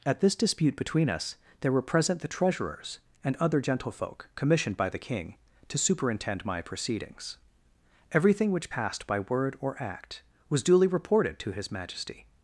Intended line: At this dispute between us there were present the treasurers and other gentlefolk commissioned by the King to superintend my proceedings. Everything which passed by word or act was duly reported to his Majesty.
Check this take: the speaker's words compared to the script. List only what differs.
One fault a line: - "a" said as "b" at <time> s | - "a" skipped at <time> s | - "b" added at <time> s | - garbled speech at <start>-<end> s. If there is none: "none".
none